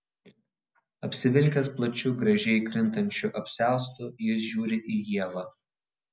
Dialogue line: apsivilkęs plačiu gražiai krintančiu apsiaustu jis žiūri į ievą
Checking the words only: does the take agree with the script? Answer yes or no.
yes